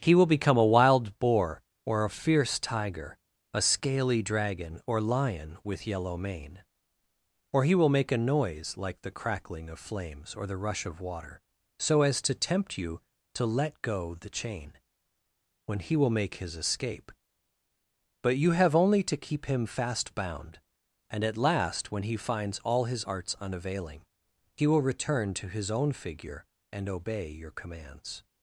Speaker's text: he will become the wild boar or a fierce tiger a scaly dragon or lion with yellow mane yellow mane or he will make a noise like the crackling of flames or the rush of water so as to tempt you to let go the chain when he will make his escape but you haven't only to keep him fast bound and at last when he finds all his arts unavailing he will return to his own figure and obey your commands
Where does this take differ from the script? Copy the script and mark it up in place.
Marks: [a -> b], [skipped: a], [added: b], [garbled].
he will become [the -> a] wild boar or a fierce tiger a scaly dragon or lion with yellow mane [skipped: yellow mane] or he will make a noise like the crackling of flames or the rush of water so as to tempt you to let go the chain when he will make his escape but you [haven't -> have] only to keep him fast bound and at last when he finds all his arts unavailing he will return to his own figure and obey your commands